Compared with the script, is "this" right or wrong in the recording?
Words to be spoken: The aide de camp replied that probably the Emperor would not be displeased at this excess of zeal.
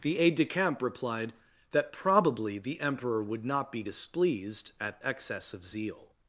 wrong